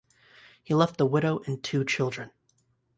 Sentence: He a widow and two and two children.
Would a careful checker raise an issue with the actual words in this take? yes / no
yes